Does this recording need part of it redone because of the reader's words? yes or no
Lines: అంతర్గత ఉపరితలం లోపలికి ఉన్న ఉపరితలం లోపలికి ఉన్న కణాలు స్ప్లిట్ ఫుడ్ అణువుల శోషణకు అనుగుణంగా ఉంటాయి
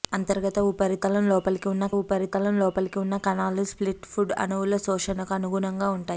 no